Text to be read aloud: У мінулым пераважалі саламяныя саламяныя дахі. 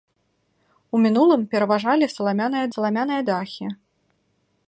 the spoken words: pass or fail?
pass